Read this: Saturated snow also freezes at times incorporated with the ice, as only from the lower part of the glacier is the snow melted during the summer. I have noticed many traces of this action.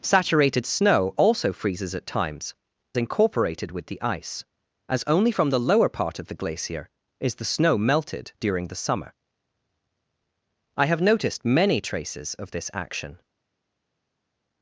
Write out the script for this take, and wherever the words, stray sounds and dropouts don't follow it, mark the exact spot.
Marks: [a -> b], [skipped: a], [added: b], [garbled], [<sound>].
Saturated snow also freezes at times incorporated with the ice, as only from the lower part of the glacier is the snow melted during the summer. I have noticed many traces of this action.